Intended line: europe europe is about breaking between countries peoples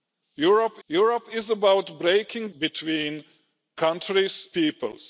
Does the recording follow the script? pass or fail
pass